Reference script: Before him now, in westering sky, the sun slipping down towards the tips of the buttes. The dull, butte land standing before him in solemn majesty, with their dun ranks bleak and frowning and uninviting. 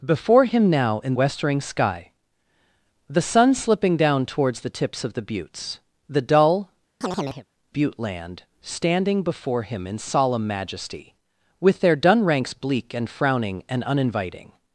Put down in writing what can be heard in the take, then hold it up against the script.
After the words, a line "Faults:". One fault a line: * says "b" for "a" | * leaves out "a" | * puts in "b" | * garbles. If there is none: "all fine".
Before him now, in westering sky, the sun slipping down towards the tips of the buttes. The dull, butte land standing before him in solemn majesty, with their dun ranks bleak and frowning and uninviting.
Faults:
all fine